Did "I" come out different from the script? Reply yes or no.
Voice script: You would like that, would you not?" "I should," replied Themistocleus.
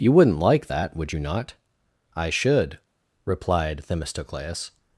no